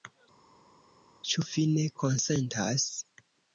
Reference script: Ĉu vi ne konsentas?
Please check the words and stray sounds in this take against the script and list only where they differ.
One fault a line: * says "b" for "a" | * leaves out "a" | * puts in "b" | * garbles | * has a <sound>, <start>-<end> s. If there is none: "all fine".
all fine